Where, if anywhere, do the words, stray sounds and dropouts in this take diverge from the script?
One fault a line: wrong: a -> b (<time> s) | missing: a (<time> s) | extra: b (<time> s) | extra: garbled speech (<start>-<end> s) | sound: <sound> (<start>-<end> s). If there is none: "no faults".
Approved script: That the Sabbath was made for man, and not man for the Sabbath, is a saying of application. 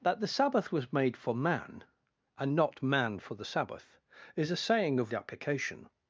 no faults